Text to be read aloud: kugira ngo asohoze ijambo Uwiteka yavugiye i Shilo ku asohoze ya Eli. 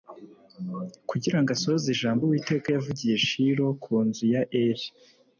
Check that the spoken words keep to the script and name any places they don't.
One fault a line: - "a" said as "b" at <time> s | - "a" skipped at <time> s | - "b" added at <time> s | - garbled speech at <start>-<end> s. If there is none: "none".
- "asohoze" said as "nzu" at 4.1 s